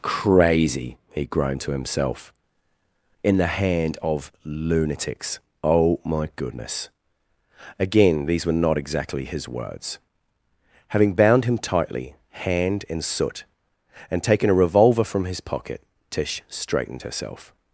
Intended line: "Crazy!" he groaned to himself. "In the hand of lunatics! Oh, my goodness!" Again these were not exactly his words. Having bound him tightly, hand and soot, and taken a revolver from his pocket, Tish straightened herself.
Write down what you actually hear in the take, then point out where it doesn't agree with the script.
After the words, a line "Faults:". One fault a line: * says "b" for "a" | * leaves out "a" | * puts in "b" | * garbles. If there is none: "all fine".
"Crazy!" he groaned to himself. "In the hand of lunatics! Oh, my goodness!" Again these were not exactly his words. Having bound him tightly, hand and soot, and taken a revolver from his pocket, Tish straightened herself.
Faults:
all fine